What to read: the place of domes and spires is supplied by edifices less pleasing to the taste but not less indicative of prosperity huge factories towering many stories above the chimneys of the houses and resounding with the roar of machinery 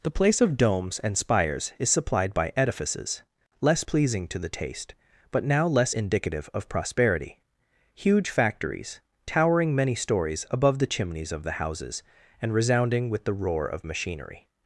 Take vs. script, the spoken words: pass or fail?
fail